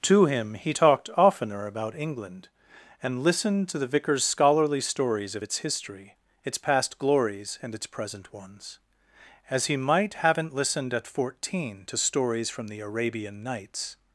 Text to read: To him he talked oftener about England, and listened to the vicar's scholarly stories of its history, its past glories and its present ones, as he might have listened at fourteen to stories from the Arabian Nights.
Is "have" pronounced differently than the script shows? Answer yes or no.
yes